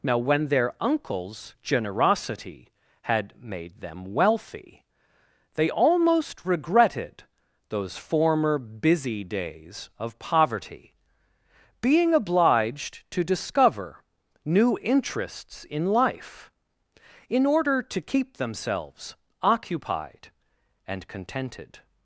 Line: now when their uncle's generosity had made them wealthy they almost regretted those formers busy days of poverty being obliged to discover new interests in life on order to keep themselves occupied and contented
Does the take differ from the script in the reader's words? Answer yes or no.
yes